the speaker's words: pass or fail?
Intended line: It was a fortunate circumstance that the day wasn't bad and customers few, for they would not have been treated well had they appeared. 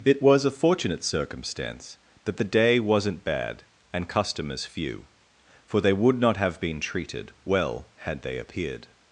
pass